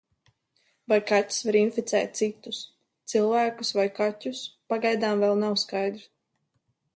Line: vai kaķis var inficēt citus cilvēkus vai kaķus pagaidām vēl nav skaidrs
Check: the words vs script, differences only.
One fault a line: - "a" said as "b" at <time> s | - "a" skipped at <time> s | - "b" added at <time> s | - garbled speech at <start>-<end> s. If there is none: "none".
none